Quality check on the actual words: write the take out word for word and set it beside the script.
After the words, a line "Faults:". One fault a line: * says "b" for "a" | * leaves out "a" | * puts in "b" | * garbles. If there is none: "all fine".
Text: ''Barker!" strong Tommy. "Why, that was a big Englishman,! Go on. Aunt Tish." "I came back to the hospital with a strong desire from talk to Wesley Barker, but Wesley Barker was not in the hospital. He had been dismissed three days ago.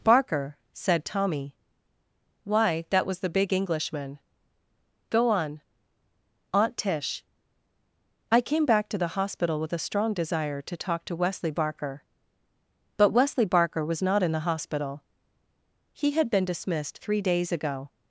''Barker!" said Tommy. "Why, that was the big Englishman,! Go on. Aunt Tish." "I came back to the hospital with a strong desire to talk to Wesley Barker, but Wesley Barker was not in the hospital. He had been dismissed three days ago.
Faults:
* says "said" for "strong"
* says "the" for "a"
* says "to" for "from"